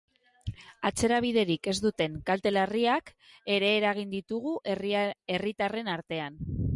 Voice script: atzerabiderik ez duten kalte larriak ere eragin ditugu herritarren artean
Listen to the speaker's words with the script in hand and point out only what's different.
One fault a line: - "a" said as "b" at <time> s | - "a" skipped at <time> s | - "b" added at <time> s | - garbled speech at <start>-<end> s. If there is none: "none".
none